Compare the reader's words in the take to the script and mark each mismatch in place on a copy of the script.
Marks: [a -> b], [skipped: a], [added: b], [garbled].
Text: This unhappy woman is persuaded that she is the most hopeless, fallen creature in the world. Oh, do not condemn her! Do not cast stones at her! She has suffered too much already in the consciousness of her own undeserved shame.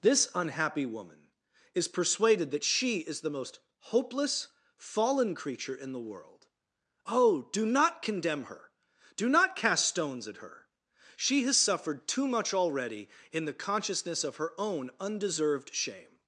This unhappy woman is persuaded that she is the most hopeless, fallen creature in the world. Oh, do not condemn her! Do not cast stones at her! She has suffered too much already in the consciousness of her own undeserved shame.